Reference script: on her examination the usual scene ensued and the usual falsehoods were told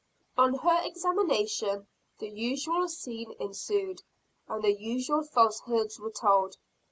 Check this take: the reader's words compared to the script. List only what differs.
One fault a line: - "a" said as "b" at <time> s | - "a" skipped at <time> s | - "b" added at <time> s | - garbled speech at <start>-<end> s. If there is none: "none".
none